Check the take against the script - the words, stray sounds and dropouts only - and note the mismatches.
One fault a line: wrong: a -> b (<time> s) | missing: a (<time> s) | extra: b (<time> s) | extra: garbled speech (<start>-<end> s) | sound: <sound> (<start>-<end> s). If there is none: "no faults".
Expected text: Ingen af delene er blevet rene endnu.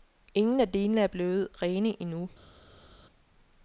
no faults